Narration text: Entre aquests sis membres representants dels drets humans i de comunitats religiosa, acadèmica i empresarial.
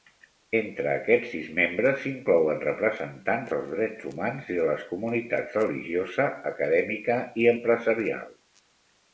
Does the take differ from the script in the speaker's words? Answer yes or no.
yes